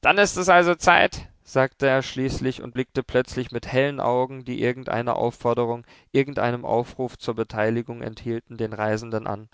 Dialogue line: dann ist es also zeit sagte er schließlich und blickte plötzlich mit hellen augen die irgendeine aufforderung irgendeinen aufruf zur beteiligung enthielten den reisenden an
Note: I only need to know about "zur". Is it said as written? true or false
true